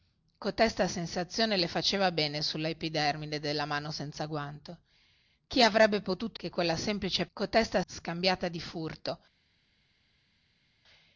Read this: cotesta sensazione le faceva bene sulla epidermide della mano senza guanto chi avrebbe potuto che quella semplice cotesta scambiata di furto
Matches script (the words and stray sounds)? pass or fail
pass